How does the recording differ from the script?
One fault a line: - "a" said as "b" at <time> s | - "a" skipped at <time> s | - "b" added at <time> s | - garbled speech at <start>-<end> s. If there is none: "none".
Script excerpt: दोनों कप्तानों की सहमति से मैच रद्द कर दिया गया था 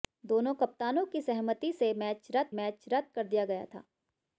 - "मैच रद्द" added at 2.5 s